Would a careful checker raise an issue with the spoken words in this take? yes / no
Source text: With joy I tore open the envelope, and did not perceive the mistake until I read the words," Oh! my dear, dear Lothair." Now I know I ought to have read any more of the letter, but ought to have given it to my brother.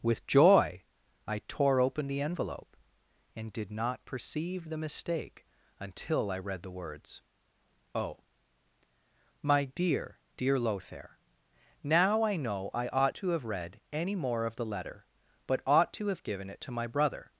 no